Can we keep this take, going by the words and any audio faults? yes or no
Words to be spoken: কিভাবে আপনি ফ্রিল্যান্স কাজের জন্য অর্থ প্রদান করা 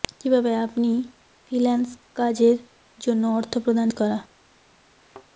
no